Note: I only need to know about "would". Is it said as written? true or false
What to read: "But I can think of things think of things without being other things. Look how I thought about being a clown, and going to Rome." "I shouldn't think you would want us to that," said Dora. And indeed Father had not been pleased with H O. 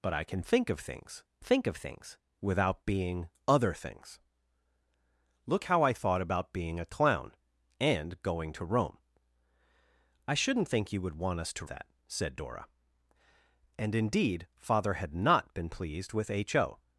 true